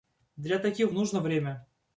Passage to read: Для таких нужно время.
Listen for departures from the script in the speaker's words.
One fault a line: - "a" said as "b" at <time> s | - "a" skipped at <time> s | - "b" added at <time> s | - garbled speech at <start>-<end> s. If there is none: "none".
none